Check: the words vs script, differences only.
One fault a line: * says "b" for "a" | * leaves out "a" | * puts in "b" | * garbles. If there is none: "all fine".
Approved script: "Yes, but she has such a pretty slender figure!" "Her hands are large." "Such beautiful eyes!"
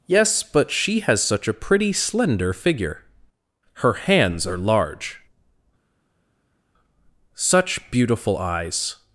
all fine